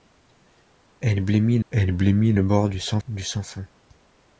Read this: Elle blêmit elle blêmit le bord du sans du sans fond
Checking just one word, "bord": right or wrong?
right